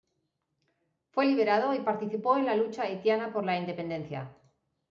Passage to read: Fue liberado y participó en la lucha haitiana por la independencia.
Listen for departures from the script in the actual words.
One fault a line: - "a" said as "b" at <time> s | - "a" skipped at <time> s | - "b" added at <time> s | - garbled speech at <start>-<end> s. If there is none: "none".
none